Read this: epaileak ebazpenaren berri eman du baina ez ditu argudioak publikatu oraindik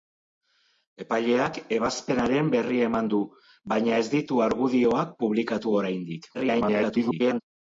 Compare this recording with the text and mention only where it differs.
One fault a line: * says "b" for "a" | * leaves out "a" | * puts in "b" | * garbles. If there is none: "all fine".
* garbles